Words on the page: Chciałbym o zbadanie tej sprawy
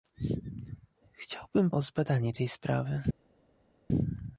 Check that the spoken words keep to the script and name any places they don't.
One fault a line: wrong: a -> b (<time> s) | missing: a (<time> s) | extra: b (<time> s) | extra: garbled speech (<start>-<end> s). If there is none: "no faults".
no faults